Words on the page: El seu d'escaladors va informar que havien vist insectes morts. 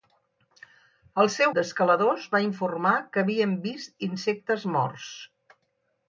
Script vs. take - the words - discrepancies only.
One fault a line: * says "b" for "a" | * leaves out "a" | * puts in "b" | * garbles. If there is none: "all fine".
all fine